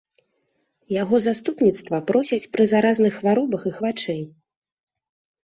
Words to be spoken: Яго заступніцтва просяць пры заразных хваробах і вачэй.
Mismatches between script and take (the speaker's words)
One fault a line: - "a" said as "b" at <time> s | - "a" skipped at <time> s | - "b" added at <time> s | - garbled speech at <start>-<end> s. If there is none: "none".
none